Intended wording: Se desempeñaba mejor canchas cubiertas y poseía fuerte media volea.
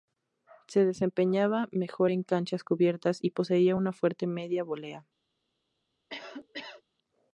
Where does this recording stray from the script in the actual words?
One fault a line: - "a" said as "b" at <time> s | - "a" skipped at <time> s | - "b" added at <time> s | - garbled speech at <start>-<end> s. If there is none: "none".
- "en" added at 2.1 s
- "una" added at 3.7 s